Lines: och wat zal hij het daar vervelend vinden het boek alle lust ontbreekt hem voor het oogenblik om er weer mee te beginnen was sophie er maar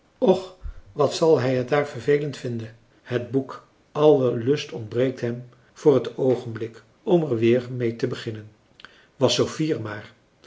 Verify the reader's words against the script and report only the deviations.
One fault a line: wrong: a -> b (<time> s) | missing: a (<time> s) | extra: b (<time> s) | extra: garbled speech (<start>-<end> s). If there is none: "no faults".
no faults